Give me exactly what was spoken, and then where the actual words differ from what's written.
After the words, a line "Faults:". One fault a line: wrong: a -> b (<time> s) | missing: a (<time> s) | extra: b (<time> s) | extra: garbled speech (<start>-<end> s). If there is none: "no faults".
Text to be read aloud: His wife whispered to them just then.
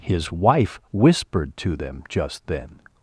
His wife whispered to them just then.
Faults:
no faults